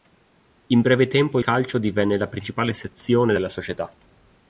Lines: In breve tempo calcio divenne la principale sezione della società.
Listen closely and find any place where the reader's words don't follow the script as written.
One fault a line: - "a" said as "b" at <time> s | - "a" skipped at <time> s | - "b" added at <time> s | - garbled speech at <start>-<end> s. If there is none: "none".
none